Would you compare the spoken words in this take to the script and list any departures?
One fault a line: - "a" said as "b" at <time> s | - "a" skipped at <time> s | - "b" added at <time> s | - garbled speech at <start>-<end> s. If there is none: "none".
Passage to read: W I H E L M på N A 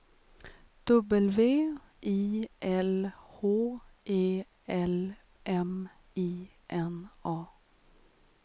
- "L" added at 2.6 s
- "på" said as "I" at 6.2 s